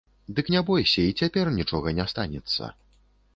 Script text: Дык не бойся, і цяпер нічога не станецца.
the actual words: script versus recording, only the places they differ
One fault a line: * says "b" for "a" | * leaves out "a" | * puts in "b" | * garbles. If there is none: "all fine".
all fine